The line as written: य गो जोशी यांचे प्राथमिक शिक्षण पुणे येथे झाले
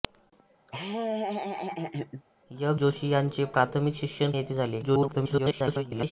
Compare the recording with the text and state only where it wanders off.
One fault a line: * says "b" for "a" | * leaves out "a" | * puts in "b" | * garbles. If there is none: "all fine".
* leaves out "गो"
* leaves out "पुणे"
* garbles